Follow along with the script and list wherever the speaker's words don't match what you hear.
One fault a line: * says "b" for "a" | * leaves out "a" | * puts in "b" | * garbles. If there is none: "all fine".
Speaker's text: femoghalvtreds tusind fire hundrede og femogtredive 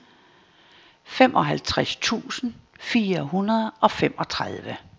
all fine